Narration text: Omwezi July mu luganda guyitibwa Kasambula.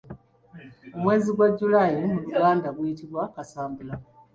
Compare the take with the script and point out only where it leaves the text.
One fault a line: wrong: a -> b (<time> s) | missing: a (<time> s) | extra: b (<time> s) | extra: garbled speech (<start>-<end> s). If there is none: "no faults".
extra: gwa (1.4 s)